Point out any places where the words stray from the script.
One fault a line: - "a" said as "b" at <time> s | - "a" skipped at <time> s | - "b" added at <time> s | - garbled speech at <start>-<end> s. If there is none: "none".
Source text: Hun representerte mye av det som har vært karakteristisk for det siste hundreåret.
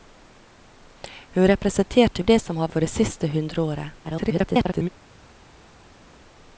- "mye" skipped at 2.2 s
- "vært karakteristisk" skipped at 2.7 s
- garbled speech at 4.0-4.9 s